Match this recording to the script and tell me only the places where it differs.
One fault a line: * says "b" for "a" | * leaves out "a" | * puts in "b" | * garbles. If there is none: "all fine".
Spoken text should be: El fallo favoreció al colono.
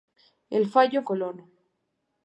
* leaves out "favoreció al"